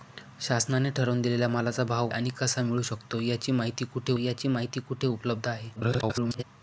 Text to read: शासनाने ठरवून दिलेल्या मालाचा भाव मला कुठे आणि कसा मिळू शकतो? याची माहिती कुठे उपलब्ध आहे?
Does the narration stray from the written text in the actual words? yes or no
yes